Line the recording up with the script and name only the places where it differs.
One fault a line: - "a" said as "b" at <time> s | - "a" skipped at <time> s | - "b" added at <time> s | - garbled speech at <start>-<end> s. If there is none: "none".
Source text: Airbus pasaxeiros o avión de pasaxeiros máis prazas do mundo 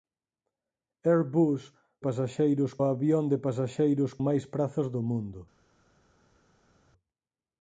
none